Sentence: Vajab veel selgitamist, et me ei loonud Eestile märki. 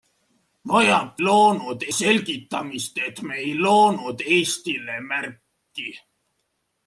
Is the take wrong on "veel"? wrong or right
wrong